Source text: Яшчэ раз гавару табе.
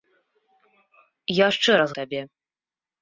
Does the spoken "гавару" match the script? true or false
false